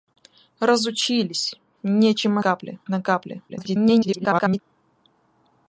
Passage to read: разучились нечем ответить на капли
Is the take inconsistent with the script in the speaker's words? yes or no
yes